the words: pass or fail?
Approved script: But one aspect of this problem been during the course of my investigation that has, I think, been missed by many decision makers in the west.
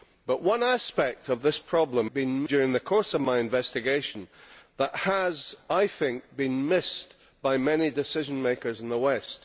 pass